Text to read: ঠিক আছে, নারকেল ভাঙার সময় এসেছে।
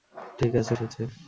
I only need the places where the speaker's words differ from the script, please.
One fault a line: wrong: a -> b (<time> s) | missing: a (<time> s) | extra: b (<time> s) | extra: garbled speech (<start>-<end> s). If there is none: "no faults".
missing: নারকেল ভাঙার সময় (0.7 s)